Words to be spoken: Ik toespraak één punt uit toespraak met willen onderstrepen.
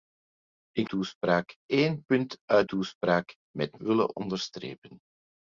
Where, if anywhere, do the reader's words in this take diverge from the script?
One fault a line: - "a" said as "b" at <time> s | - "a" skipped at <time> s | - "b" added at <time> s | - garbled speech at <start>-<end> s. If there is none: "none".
none